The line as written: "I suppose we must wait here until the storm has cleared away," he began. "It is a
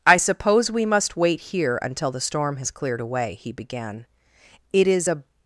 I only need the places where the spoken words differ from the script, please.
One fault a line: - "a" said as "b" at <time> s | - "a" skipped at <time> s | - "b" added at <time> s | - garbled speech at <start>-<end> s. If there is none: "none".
none